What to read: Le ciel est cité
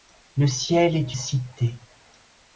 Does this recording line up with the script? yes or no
yes